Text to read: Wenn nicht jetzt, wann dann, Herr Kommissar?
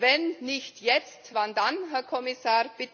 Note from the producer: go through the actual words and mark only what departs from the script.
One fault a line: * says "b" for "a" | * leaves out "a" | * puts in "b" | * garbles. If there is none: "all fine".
all fine